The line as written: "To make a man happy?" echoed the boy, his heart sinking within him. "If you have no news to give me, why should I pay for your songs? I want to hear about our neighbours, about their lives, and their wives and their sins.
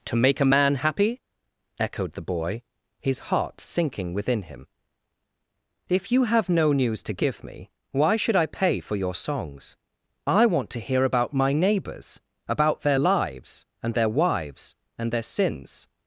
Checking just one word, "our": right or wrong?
wrong